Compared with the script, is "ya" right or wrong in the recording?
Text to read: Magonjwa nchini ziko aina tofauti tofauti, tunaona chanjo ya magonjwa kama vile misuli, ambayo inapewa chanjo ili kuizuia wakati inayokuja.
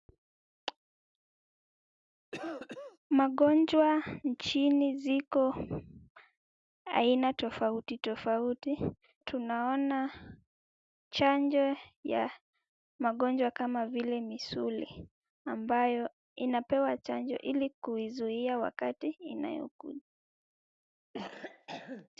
right